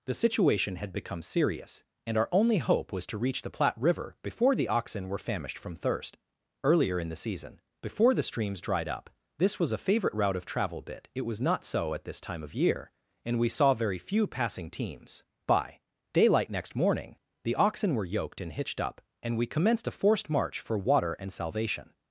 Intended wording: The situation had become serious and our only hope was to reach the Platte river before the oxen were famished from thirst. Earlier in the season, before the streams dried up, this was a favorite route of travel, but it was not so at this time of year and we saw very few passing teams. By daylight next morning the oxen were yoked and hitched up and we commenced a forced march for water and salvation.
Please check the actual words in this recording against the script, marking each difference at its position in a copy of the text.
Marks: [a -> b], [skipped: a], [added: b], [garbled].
The situation had become serious and our only hope was to reach the Platte river before the oxen were famished from thirst. Earlier in the season, before the streams dried up, this was a favorite route of travel, [but -> bit] it was not so at this time of year and we saw very few passing teams. By daylight next morning the oxen were yoked and hitched up and we commenced a forced march for water and salvation.